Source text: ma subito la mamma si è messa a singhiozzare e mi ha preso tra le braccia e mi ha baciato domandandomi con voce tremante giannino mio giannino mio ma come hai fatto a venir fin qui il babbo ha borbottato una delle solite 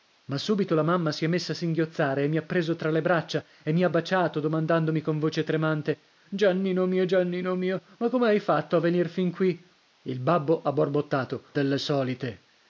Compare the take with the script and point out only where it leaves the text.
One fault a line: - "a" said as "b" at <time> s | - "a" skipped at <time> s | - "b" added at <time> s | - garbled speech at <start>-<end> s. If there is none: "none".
- "una" skipped at 11.5 s